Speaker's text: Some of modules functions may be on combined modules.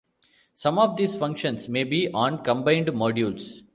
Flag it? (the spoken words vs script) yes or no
yes